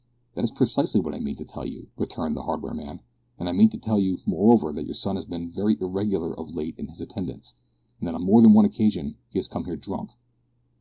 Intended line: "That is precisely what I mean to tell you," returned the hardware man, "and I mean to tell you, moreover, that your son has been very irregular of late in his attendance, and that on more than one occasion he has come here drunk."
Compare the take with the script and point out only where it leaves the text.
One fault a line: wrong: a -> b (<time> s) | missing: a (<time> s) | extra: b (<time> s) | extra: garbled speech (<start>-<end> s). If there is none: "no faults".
no faults